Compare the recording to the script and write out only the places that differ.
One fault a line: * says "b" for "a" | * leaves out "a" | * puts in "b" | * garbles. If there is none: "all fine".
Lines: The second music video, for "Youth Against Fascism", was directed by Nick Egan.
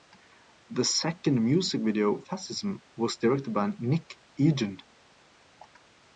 * leaves out "for Youth Against"